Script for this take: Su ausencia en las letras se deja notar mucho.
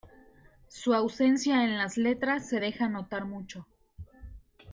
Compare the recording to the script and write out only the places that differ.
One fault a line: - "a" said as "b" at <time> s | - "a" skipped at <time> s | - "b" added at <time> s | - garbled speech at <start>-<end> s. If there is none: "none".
none